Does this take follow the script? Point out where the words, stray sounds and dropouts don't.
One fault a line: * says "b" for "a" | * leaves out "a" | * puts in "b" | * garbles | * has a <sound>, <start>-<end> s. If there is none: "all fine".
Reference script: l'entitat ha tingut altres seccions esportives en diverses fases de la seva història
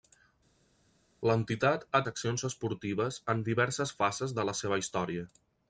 * leaves out "tingut altres"